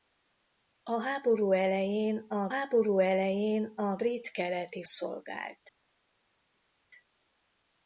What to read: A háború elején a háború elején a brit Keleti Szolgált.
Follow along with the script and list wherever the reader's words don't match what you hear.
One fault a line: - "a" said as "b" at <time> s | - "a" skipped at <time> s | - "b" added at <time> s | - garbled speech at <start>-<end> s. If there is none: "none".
none